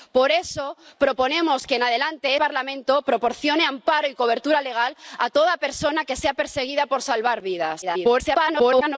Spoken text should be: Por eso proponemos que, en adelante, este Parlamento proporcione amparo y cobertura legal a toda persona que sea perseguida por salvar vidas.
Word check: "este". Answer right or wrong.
wrong